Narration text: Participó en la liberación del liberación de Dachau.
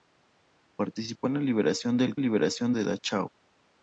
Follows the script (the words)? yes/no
yes